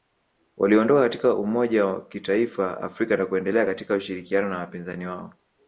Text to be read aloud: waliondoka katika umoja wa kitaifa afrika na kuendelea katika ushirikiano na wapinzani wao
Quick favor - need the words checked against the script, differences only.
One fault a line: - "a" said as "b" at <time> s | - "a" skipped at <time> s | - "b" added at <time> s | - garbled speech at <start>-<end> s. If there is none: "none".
none